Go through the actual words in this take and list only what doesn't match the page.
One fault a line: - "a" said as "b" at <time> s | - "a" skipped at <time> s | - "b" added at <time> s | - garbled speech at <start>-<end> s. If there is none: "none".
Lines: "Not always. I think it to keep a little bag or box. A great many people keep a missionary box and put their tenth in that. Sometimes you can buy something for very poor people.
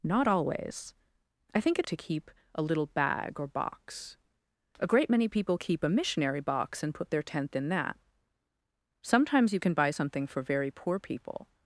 none